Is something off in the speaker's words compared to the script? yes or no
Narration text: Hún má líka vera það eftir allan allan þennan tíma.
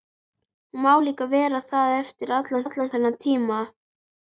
no